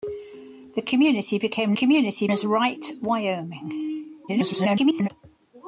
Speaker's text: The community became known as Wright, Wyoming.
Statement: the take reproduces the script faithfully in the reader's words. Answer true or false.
false